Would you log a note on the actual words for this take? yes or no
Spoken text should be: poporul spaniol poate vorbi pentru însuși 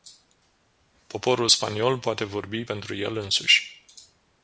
yes